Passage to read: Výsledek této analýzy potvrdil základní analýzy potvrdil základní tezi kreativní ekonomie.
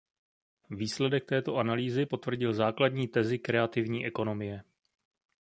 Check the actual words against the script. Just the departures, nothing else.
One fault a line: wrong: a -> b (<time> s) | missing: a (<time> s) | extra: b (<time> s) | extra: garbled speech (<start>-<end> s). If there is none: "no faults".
missing: analýzy potvrdil základní (3.1 s)